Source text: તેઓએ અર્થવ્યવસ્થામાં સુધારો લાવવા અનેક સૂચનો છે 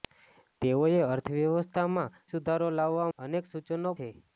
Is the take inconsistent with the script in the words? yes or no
no